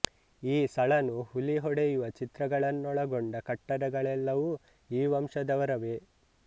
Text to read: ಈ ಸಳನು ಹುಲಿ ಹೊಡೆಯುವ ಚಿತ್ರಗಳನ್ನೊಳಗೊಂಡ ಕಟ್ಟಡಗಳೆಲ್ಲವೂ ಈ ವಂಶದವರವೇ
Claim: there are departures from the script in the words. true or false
false